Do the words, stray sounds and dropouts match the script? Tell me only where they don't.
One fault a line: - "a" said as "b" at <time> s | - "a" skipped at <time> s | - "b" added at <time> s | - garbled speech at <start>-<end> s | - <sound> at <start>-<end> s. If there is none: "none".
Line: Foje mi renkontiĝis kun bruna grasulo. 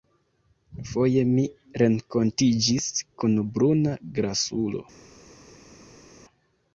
none